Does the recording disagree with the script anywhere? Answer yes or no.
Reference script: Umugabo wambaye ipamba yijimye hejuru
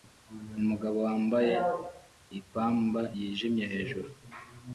no